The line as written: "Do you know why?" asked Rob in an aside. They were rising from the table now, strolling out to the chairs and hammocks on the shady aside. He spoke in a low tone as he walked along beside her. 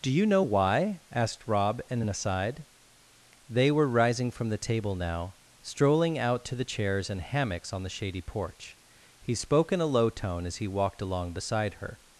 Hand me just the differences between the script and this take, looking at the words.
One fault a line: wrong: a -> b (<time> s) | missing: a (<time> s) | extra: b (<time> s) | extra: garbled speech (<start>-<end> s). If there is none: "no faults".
wrong: aside -> porch (8.2 s)